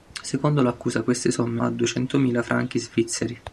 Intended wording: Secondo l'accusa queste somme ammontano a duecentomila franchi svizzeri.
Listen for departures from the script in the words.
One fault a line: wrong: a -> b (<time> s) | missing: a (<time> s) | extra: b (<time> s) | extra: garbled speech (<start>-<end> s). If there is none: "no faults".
missing: ammontano (1.6 s)